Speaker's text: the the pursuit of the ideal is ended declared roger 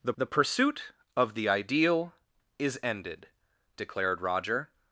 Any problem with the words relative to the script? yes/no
no